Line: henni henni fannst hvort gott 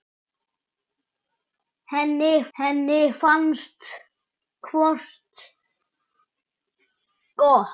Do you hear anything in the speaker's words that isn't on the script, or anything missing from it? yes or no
no